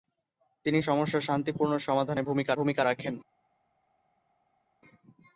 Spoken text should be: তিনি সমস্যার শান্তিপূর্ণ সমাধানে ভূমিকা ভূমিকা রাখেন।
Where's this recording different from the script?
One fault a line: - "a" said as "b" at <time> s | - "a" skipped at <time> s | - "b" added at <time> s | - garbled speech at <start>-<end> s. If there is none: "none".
none